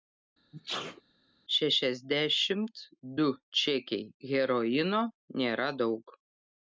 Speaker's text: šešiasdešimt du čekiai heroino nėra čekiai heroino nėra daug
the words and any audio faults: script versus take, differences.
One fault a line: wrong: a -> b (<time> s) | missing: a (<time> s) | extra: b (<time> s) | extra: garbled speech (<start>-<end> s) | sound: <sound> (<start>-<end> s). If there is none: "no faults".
sound: sneeze (0.5-1.0 s)
missing: čekiai heroino nėra (5.7 s)